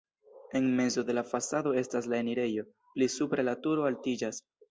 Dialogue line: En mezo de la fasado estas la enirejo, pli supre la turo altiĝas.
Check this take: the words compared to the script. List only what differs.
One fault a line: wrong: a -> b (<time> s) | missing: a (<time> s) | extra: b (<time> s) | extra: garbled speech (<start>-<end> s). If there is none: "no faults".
no faults